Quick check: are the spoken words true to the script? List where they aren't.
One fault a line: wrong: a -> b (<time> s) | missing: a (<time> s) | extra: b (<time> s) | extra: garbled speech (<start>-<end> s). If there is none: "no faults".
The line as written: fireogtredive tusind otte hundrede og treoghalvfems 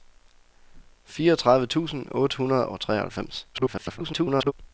extra: garbled speech (3.5-4.5 s)